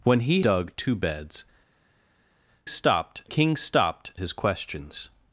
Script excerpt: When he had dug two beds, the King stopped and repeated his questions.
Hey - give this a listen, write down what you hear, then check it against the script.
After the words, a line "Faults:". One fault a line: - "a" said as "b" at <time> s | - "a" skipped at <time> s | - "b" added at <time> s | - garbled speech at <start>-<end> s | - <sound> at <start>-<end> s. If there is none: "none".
When he dug two beds, stopped King stopped his questions.
Faults:
- "had" skipped at 0.4 s
- "the" said as "stopped" at 2.7 s
- "and repeated" skipped at 4.1 s